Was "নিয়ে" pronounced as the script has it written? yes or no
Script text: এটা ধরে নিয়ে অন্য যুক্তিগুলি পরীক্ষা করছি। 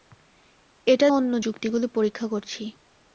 no